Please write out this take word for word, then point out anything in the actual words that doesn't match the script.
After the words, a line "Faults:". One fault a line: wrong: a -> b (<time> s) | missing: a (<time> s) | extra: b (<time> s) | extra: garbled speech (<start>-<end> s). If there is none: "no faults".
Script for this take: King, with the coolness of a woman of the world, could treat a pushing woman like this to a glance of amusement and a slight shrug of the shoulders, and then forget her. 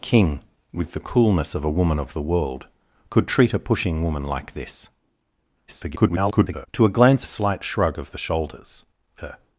King, with the coolness of a woman of the world, could treat a pushing woman like this [garbled] to a glance a slight shrug of the shoulders, her.
Faults:
extra: garbled speech (5.7-6.7 s)
missing: of amusement and (7.2 s)
missing: and then forget (8.8 s)